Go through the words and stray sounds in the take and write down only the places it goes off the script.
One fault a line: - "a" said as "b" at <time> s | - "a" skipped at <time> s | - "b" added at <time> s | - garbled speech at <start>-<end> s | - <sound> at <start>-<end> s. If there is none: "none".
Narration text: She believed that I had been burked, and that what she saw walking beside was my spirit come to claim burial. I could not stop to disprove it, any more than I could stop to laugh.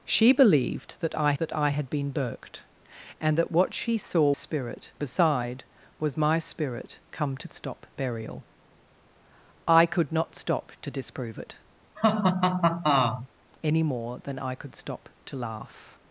- "that I" added at 1.4 s
- "walking" said as "spirit" at 4.3 s
- "claim" said as "stop" at 7.5 s
- laugh at 12.0-13.3 s